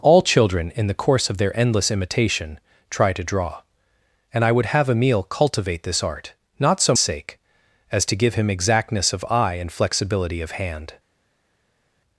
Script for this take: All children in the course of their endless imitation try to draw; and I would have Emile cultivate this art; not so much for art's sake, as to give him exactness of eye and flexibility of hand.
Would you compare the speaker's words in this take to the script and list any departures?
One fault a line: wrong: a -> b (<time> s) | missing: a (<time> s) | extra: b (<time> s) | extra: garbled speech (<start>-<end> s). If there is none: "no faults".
missing: much for art's (6.9 s)